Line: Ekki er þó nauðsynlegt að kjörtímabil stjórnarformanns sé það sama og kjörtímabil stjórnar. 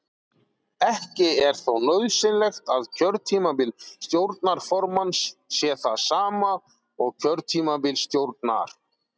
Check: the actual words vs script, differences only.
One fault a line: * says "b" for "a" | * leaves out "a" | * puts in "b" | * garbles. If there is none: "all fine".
all fine